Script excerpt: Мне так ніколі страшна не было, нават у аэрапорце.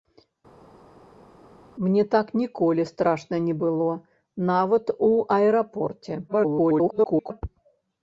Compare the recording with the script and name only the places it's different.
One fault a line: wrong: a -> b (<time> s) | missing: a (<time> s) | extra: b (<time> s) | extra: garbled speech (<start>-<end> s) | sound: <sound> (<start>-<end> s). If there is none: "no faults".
extra: garbled speech (6.3-7.4 s)